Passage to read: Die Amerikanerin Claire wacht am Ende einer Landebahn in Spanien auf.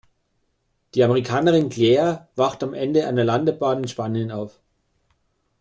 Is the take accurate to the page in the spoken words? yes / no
yes